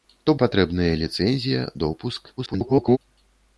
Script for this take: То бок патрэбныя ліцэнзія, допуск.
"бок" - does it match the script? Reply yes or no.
no